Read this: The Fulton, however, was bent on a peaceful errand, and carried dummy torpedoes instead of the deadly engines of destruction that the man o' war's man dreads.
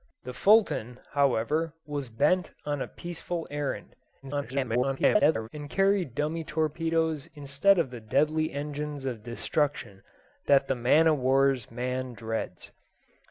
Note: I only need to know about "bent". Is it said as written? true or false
true